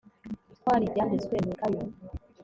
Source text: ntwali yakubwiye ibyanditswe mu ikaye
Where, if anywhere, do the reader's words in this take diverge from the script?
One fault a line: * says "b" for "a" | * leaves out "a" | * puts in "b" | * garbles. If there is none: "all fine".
* leaves out "yakubwiye"